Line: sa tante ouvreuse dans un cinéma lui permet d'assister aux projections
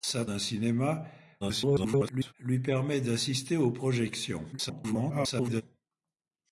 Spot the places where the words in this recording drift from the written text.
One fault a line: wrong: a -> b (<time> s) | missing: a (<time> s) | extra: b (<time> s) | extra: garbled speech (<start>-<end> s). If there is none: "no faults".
missing: tante ouvreuse dans (0.2 s)
extra: garbled speech (1.4-2.3 s)
extra: garbled speech (4.5-5.6 s)